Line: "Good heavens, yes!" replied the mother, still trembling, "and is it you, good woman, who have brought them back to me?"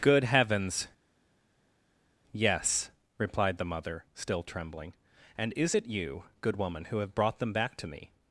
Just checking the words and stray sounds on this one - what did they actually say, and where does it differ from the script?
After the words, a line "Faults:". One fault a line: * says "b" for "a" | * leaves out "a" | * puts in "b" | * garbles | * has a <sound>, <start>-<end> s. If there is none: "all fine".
"Good heavens, yes!" replied the mother, still trembling, "and is it you, good woman, who have brought them back to me?"
Faults:
all fine